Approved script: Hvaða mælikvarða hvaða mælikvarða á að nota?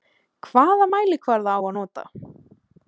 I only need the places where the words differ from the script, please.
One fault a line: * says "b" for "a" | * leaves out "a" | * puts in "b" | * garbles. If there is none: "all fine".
* leaves out "hvaða mælikvarða"